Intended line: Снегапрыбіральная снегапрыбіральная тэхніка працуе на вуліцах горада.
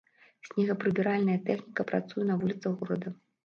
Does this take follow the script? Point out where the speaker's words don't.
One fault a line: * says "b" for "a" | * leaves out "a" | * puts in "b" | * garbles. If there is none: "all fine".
* leaves out "снегапрыбіральная"